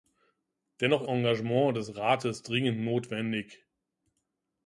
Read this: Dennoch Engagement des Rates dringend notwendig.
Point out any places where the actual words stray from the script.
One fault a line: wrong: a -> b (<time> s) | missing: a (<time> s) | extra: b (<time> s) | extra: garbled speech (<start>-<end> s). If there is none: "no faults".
no faults